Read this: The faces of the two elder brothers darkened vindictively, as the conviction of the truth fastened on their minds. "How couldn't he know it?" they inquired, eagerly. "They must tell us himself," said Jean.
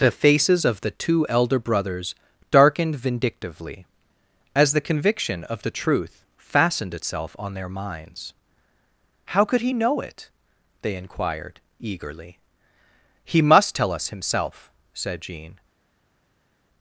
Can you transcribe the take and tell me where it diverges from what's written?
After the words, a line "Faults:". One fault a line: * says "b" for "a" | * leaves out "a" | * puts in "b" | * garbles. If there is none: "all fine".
The faces of the two elder brothers darkened vindictively, as the conviction of the truth fastened itself on their minds. "How could he know it?" they inquired, eagerly. "He must tell us himself," said Jean.
Faults:
* puts in "itself"
* says "could" for "couldn't"
* says "He" for "They"